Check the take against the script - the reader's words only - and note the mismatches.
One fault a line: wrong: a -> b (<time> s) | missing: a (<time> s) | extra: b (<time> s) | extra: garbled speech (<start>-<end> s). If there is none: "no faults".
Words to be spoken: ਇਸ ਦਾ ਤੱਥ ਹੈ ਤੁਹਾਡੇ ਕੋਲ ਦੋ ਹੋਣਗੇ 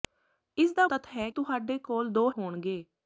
no faults